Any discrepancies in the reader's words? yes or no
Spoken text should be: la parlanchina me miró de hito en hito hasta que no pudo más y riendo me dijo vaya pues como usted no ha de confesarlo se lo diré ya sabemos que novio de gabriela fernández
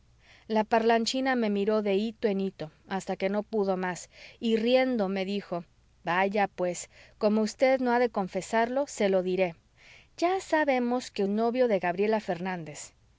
no